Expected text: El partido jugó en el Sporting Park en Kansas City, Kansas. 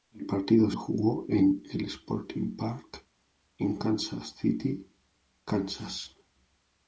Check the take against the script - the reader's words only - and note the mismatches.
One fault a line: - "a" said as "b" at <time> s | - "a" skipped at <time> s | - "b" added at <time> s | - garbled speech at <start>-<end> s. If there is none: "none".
none